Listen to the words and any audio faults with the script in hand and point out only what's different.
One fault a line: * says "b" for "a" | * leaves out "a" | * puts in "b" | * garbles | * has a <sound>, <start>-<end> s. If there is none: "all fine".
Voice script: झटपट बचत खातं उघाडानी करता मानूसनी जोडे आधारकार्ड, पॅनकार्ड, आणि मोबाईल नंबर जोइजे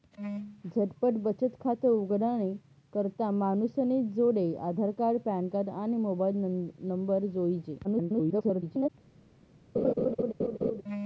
* garbles
* has a laugh, 9.7-10.8 s